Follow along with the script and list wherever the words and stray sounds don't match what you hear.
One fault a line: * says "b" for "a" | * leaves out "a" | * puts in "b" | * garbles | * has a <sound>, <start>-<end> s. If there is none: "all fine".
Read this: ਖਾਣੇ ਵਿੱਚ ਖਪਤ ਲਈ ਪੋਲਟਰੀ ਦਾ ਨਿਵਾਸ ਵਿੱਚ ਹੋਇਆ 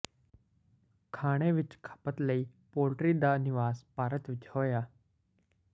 * puts in "ਭਾਰਤ"